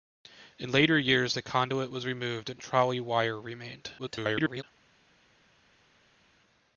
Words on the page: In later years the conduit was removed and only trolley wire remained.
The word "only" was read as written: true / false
false